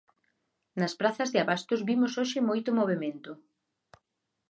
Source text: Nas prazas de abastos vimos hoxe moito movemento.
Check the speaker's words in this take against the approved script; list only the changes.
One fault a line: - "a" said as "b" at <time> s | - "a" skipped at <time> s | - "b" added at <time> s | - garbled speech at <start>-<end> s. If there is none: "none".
none